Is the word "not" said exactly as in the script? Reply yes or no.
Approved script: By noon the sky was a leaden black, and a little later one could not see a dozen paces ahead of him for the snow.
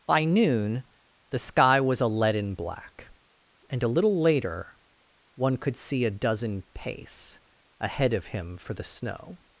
no